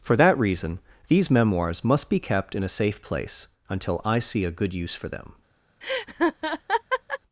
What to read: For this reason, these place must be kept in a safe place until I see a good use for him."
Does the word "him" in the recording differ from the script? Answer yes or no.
yes